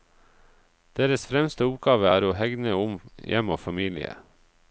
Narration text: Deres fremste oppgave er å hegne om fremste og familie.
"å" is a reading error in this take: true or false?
false